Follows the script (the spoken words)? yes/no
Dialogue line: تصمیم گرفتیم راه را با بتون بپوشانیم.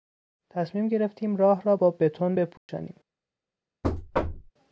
yes